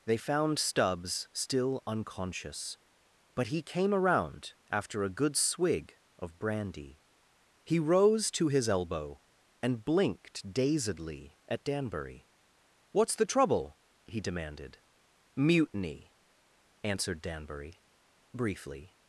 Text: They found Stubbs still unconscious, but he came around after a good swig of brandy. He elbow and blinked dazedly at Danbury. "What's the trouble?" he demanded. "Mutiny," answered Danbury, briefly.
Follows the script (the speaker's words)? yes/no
no